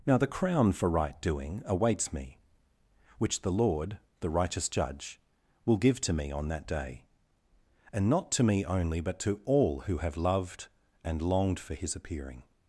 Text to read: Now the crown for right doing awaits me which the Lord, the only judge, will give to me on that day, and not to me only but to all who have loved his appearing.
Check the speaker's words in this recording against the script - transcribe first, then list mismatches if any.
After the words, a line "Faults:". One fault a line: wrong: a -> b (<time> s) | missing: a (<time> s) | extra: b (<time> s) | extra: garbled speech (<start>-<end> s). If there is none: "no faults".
Now the crown for right doing awaits me which the Lord, the righteous judge, will give to me on that day, and not to me only but to all who have loved and longed for his appearing.
Faults:
wrong: only -> righteous (4.3 s)
extra: and longed for (11.0 s)